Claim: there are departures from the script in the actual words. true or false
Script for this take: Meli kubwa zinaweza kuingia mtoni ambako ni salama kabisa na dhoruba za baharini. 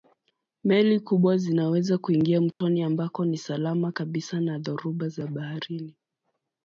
false